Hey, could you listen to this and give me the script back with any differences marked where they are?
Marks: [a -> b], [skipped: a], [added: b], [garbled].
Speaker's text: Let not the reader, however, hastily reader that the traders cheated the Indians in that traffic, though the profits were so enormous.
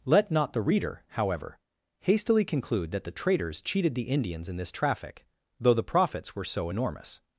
Let not the reader, however, hastily [reader -> conclude] that the traders cheated the Indians in [that -> this] traffic, though the profits were so enormous.